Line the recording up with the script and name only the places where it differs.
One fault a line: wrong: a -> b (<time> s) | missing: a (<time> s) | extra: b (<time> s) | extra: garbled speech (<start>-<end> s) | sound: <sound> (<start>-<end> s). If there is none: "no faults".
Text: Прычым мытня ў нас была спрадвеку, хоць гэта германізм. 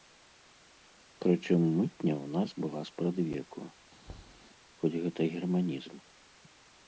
sound: thud (4.1-4.5 s)